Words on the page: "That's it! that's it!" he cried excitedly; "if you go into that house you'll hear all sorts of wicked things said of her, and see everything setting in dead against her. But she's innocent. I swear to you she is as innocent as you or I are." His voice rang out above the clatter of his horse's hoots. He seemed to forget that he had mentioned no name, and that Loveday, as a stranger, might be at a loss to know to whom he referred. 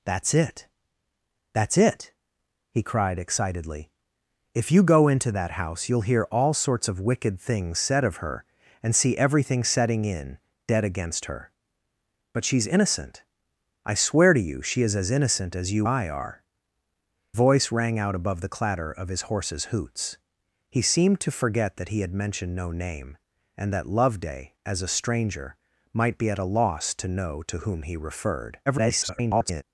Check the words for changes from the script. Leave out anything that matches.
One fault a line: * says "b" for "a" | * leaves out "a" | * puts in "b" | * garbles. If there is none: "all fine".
* leaves out "or"
* leaves out "His"
* garbles